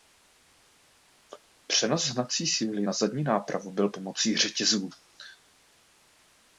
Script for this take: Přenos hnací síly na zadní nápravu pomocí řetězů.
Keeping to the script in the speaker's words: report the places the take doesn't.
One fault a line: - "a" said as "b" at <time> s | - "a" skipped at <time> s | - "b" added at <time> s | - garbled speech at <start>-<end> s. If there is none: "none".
- "byl" added at 3.7 s